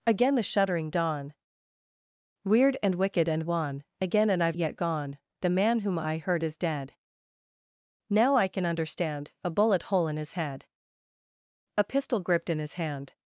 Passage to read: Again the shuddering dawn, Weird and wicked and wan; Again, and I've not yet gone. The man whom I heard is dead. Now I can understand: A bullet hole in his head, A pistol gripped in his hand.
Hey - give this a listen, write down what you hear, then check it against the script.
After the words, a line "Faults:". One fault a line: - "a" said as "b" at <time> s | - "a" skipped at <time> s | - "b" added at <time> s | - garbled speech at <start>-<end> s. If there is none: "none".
Again the shuddering dawn, Weird and wicked and wan; Again, and I've yet gone. The man whom I heard is dead. Now I can understand: A bullet hole in his head, A pistol gripped in his hand.
Faults:
- "not" skipped at 4.6 s